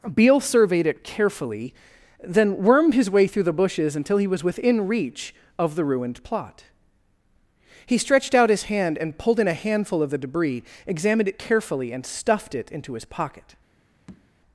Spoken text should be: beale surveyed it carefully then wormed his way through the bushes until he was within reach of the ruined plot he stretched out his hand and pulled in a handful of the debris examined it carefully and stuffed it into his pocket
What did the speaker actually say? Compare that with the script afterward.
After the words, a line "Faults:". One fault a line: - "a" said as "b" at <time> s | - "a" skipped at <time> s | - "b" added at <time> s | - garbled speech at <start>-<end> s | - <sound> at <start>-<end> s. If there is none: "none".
beale surveyed it carefully then wormed his way through the bushes until he was within reach of the ruined plot he stretched out his hand and pulled in a handful of the debris examined it carefully and stuffed it into his pocket
Faults:
- tap at 14.1-14.3 s